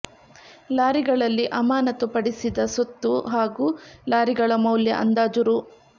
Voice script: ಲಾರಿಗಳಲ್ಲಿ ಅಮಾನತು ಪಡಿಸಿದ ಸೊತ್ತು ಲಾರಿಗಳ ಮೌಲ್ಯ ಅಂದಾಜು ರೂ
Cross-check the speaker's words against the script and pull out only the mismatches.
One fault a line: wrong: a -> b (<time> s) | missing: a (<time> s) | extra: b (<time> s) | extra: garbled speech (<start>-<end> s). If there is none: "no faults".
extra: ಹಾಗೂ (3.3 s)